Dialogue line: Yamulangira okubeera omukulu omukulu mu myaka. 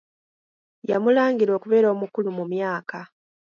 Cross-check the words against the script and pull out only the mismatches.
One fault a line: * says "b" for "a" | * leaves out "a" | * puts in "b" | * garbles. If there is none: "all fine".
* leaves out "omukulu"